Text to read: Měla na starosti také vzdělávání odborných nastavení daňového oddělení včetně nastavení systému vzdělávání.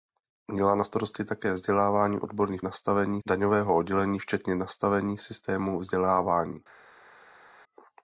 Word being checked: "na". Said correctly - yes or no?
yes